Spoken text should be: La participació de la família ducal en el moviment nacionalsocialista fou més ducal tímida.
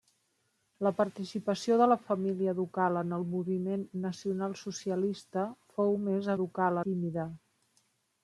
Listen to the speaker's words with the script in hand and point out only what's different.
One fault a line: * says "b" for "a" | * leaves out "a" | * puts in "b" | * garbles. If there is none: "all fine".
all fine